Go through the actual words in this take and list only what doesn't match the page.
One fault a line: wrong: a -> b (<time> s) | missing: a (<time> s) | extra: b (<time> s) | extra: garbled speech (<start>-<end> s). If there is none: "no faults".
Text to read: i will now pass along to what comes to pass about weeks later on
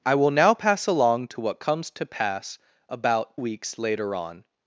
no faults